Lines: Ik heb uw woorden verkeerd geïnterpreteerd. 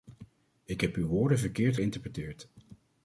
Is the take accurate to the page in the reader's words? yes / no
yes